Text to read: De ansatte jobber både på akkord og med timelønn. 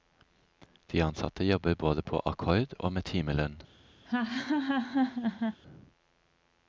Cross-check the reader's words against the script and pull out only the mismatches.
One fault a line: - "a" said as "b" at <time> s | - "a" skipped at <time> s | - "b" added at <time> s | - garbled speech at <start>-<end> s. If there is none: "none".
none